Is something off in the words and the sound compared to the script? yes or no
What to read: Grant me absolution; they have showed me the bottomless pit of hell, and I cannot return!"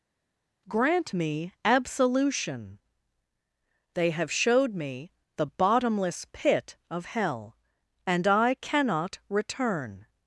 no